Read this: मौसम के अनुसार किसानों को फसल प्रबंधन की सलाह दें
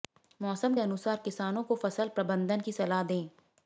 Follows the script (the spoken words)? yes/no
yes